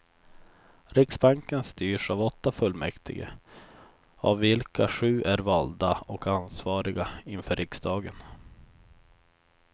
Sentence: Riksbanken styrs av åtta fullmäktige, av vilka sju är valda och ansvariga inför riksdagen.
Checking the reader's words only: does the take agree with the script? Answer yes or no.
yes